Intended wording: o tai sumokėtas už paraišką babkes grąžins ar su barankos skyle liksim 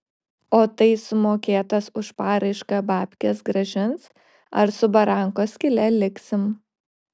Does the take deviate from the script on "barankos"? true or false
false